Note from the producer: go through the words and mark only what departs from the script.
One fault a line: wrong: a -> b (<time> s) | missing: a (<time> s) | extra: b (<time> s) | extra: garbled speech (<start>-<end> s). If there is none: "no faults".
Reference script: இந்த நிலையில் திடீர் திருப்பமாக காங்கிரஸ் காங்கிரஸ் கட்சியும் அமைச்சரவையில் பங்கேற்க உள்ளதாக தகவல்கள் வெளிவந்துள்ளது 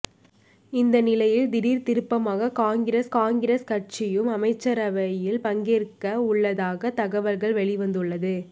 no faults